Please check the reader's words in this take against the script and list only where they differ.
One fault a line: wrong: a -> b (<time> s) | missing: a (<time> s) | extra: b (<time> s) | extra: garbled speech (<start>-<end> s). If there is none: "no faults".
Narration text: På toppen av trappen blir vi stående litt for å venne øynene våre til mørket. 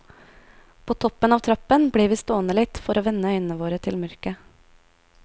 no faults